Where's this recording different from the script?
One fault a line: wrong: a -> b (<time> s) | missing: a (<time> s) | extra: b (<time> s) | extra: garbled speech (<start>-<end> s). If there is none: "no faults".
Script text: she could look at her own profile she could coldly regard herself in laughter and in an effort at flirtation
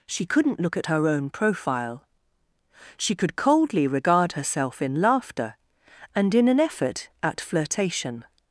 wrong: could -> couldn't (0.2 s)